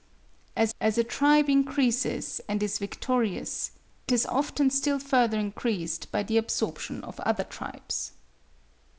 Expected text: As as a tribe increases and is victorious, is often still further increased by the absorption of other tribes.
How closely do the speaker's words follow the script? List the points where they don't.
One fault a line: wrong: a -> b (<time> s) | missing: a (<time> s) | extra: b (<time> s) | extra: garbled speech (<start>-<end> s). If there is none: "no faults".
no faults